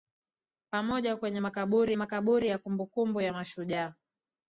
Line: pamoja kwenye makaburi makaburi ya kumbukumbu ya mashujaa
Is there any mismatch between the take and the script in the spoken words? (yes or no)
no